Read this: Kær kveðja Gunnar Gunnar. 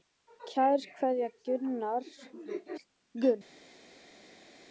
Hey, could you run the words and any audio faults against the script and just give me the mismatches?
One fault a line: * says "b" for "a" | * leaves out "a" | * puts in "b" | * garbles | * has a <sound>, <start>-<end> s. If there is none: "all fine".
all fine